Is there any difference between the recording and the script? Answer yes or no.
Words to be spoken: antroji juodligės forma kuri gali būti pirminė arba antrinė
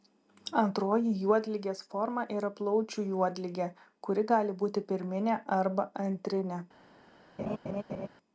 yes